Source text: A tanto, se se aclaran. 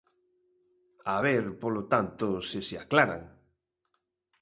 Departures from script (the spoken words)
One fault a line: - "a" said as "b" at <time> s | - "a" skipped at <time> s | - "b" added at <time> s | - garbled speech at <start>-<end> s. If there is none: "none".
- "ver polo" added at 1.3 s